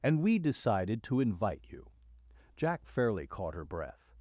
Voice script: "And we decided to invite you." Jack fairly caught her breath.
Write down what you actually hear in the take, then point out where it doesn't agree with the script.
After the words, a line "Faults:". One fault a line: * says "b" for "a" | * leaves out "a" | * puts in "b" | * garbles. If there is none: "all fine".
"And we decided to invite you." Jack fairly caught her breath.
Faults:
all fine